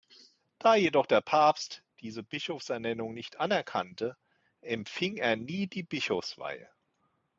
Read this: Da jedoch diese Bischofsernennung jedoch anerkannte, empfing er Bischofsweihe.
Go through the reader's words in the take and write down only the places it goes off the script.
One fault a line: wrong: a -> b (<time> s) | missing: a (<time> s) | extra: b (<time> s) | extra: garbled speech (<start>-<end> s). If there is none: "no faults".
extra: der Papst (1.0 s)
wrong: jedoch -> nicht (3.1 s)
extra: nie die (5.4 s)